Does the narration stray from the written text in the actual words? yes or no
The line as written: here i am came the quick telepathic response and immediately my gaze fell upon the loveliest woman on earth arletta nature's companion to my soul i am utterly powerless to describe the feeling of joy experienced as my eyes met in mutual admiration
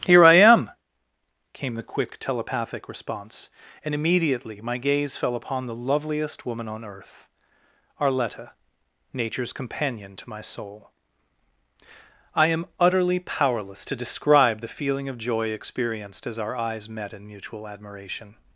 yes